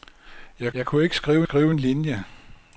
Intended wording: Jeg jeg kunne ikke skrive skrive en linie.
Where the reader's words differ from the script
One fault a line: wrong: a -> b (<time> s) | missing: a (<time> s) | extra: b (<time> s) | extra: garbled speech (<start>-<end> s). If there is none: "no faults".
no faults